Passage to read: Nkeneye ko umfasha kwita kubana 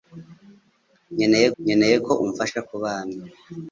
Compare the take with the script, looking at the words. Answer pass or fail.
fail